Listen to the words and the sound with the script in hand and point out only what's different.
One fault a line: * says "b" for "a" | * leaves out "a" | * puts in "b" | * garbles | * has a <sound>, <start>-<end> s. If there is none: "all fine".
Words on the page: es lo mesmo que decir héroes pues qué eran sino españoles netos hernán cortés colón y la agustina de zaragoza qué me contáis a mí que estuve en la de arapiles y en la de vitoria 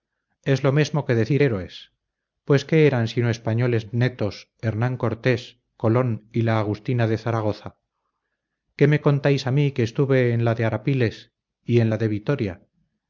all fine